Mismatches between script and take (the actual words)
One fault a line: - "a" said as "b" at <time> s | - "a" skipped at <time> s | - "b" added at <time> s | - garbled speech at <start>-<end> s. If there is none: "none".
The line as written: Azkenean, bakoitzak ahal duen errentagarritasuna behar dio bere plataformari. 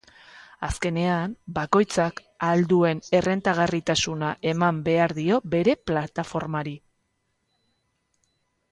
- "eman" added at 4.5 s